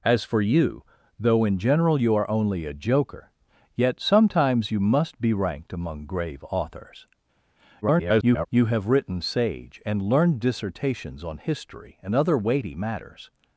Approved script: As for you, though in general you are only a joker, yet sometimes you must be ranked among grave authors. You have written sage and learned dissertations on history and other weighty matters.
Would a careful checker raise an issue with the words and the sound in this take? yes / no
yes